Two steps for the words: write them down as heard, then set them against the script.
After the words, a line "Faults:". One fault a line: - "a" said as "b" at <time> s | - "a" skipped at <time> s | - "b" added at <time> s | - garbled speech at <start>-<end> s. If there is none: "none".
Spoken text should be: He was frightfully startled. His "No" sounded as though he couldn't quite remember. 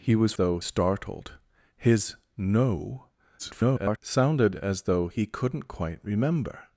He was though startled. His "No" [garbled] sounded as though he couldn't quite remember.
Faults:
- "frightfully" said as "though" at 0.3 s
- garbled speech at 3.4-4.0 s